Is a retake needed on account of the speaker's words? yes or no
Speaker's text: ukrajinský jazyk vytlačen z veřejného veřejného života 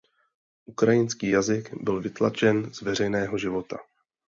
yes